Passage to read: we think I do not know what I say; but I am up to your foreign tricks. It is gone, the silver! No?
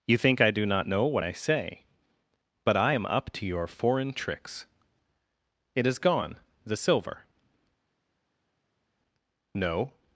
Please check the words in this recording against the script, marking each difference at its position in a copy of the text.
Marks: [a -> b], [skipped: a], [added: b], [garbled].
[we -> you] think I do not know what I say; but I am up to your foreign tricks. It is gone, the silver! No?